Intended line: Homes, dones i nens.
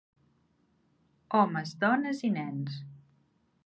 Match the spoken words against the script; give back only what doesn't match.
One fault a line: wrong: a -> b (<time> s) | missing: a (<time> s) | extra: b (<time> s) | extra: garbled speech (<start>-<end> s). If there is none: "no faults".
no faults